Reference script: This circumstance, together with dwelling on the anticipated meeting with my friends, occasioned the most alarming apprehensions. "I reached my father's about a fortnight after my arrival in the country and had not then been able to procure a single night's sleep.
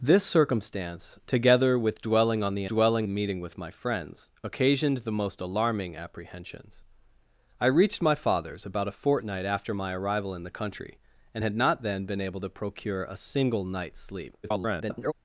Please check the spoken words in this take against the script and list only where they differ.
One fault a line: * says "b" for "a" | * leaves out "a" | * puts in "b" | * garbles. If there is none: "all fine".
* says "dwelling" for "anticipated"
* garbles